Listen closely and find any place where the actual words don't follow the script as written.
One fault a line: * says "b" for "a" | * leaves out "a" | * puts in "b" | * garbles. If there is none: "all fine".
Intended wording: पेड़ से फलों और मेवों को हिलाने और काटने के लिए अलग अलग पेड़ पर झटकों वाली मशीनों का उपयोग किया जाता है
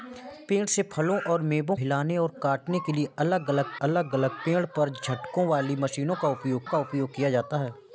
* leaves out "को"
* puts in "अलग अलग"
* puts in "का उपयोग"